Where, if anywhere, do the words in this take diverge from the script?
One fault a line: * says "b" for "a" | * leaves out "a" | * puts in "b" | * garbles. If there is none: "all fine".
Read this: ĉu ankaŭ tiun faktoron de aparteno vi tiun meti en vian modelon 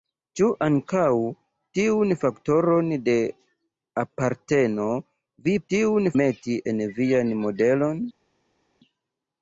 all fine